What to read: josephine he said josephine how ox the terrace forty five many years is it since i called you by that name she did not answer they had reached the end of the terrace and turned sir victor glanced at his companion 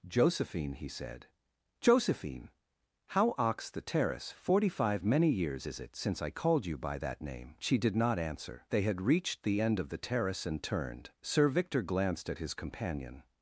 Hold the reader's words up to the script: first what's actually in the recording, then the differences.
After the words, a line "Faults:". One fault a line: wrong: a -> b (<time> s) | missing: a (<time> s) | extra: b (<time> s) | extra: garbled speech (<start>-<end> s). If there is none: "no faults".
josephine he said josephine how ox the terrace forty five many years is it since i called you by that name she did not answer they had reached the end of the terrace and turned sir victor glanced at his companion
Faults:
no faults